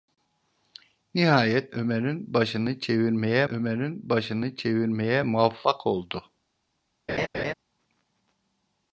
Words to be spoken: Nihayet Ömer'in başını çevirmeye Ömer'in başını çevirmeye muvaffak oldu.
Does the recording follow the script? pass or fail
pass